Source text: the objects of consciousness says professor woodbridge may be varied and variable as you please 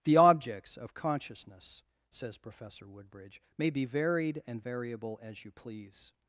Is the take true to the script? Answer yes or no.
yes